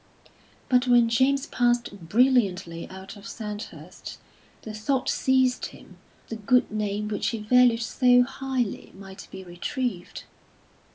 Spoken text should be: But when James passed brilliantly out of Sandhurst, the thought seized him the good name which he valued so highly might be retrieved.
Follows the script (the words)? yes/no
yes